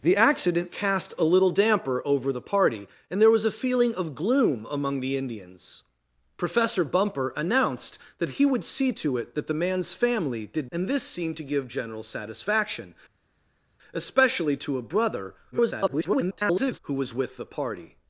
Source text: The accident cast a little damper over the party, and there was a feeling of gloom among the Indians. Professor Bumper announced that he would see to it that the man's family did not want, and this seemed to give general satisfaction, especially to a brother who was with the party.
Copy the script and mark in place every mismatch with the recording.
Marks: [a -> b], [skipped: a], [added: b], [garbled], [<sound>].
The accident cast a little damper over the party, and there was a feeling of gloom among the Indians. Professor Bumper announced that he would see to it that the man's family did [skipped: not want,] and this seemed to give general satisfaction, especially to a brother [garbled] who was with the party.